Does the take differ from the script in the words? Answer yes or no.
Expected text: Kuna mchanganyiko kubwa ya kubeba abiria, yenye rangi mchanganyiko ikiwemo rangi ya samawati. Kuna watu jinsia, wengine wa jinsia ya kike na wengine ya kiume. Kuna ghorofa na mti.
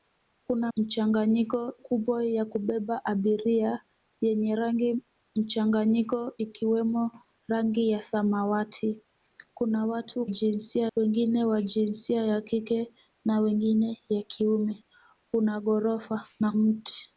no